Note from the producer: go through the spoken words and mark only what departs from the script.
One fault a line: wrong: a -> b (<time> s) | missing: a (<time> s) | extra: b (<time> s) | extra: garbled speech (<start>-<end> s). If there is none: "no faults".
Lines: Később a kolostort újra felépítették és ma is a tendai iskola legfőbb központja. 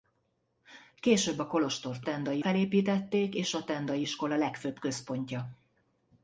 wrong: újra -> tendai (2.0 s)
missing: ma is (3.5 s)